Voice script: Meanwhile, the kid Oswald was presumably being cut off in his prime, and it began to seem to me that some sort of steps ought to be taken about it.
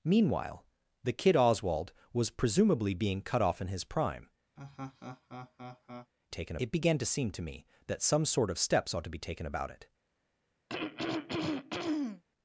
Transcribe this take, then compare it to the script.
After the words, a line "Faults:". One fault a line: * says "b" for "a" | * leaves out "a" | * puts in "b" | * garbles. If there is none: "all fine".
Meanwhile, the kid Oswald was presumably being cut off in his prime, taken it began to seem to me that some sort of steps ought to be taken about it.
Faults:
* says "taken" for "and"